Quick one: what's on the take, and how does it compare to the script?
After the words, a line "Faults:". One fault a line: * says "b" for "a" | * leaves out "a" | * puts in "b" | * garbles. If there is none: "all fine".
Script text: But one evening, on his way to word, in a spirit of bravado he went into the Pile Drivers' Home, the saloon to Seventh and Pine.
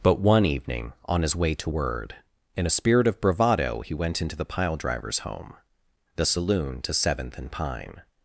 But one evening, on his way to word, in a spirit of bravado he went into the Pile Drivers' Home, the saloon to Seventh and Pine.
Faults:
all fine